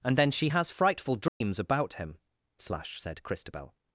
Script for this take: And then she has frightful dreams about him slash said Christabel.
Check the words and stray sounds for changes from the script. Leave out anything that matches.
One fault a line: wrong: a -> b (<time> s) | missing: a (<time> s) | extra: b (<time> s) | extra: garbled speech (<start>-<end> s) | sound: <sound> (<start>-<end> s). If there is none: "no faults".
sound: dropout (1.3-1.4 s)